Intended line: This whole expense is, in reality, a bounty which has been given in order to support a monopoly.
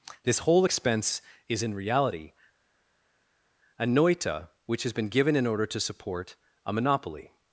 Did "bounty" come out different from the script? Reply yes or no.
yes